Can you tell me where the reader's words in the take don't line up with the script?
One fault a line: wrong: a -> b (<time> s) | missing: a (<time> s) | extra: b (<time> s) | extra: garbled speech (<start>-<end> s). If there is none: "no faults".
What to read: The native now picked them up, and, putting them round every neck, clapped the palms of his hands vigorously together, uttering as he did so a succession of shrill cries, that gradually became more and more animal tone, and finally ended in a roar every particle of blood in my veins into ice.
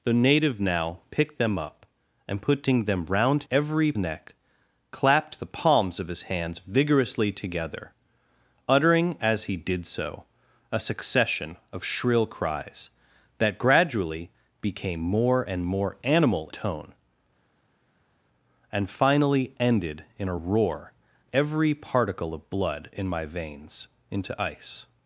no faults